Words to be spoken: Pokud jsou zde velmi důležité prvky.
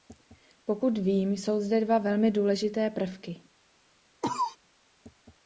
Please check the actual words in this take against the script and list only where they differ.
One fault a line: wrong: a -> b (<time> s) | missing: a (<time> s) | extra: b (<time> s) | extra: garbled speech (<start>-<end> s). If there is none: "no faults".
extra: vím (1.0 s)
extra: dva (1.9 s)